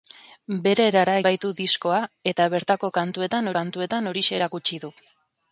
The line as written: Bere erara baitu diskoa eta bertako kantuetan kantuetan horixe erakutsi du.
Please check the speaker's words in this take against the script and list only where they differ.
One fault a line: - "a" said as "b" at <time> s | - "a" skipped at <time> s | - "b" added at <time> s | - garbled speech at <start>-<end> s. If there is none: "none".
none